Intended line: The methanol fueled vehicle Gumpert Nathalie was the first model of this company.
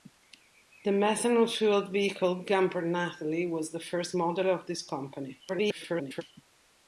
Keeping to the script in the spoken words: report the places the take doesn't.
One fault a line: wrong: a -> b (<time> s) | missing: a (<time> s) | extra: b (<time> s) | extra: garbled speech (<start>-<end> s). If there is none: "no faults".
extra: garbled speech (5.5-6.2 s)